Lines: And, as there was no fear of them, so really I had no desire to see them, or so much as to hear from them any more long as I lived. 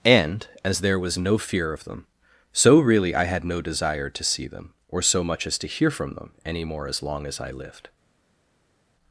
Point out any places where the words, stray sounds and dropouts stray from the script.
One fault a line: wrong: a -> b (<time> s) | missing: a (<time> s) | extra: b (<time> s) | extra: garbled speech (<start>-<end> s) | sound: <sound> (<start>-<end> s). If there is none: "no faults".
extra: as (6.9 s)